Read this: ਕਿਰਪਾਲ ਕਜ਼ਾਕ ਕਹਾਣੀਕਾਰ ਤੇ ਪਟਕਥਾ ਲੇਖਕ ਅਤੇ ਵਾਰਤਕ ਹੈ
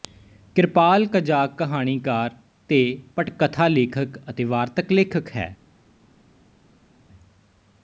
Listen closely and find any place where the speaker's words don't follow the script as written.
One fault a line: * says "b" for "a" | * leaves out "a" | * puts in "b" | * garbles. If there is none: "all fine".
* puts in "ਲੇਖਕ"